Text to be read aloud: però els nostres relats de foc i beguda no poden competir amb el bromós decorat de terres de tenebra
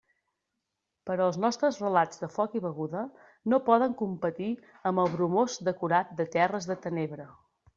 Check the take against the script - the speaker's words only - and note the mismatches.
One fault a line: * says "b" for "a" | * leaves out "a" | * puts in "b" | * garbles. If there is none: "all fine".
all fine